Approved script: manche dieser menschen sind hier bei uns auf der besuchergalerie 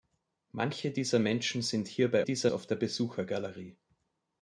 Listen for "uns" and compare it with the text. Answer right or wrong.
wrong